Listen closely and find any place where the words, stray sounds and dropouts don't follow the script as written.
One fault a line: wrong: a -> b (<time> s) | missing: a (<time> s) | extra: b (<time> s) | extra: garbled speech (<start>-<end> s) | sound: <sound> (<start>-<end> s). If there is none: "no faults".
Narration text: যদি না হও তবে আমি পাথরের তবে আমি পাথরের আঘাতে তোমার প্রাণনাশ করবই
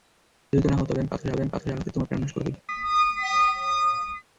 sound: squeak (2.7-4.2 s)